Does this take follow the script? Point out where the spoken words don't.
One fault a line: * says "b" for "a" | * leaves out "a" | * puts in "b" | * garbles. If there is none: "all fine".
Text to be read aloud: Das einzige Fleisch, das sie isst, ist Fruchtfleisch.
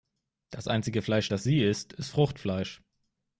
all fine